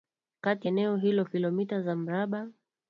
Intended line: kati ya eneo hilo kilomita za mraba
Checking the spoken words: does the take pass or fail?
fail